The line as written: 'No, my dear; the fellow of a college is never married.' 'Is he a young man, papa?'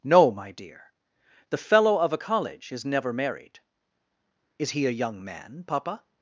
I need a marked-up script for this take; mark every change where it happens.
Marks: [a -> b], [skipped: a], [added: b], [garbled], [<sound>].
'No, my dear; the fellow of a college is never married.' 'Is he a young man, papa?'